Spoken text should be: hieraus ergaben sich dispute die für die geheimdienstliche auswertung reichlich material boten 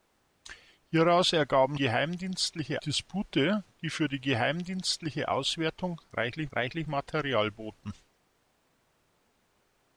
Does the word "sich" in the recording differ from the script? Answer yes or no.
yes